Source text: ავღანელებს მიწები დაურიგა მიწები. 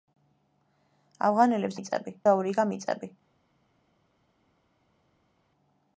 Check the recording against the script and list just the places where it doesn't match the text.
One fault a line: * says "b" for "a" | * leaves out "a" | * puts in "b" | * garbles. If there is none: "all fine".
all fine